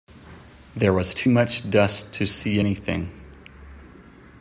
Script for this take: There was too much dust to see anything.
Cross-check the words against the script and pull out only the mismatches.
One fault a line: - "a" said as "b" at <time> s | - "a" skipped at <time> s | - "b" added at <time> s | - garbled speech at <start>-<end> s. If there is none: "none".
none